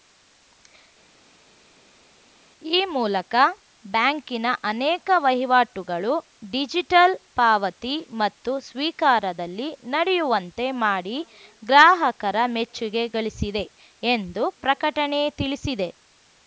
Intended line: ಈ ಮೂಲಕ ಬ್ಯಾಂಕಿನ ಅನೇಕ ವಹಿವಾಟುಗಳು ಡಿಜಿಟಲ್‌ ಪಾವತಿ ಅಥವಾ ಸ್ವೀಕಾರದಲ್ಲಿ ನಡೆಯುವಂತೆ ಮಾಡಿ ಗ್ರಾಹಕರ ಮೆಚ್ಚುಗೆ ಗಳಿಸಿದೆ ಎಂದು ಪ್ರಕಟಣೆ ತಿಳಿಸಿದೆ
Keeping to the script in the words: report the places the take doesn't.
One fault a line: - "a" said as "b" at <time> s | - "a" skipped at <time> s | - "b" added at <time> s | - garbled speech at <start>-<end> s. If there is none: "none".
- "ಅಥವಾ" said as "ಮತ್ತು" at 8.2 s